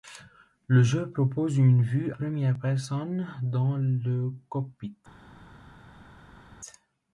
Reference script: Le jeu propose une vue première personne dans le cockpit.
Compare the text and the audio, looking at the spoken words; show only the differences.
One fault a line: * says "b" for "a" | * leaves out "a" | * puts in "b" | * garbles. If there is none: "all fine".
all fine